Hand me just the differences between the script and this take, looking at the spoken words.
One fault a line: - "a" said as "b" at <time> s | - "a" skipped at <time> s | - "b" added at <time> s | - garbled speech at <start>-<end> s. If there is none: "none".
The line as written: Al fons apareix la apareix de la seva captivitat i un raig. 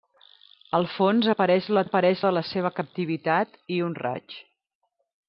none